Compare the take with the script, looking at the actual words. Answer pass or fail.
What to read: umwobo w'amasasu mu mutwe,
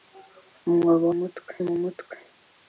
fail